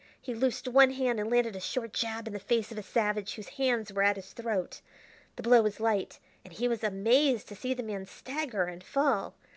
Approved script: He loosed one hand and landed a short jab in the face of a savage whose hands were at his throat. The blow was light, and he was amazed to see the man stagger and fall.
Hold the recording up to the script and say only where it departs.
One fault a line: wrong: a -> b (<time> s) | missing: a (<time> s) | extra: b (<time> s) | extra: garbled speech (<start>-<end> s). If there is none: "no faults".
no faults